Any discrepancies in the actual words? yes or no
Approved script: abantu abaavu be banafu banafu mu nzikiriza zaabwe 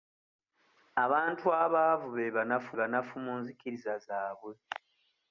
no